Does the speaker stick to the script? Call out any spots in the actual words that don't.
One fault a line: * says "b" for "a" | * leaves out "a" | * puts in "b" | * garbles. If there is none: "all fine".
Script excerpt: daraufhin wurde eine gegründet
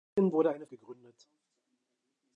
all fine